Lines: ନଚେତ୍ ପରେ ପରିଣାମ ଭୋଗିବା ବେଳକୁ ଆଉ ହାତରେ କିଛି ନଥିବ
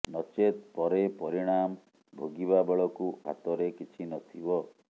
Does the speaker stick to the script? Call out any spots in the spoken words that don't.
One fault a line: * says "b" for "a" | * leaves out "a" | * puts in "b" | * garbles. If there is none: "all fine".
* leaves out "ଆଉ"